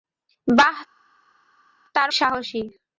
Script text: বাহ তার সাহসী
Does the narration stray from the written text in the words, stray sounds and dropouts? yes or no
no